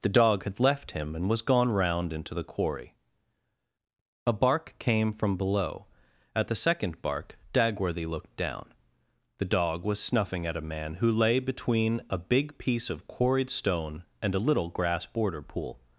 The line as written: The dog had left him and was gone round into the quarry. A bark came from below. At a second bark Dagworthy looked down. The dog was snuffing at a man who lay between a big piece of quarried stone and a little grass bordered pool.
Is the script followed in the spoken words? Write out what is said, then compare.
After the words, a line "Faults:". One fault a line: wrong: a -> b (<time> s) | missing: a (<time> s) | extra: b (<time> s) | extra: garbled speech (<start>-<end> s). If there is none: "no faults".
The dog had left him and was gone round into the quarry. A bark came from below. At the second bark Dagworthy looked down. The dog was snuffing at a man who lay between a big piece of quarried stone and a little grass border pool.
Faults:
wrong: a -> the (6.5 s)
wrong: bordered -> border (15.1 s)